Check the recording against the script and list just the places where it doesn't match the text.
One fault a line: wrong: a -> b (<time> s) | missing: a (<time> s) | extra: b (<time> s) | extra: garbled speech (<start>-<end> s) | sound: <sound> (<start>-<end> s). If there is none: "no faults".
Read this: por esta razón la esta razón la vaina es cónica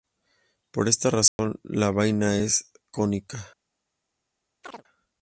sound: dropout (1.3-1.4 s)
missing: esta razón la (1.9 s)
sound: chirp (4.6-4.8 s)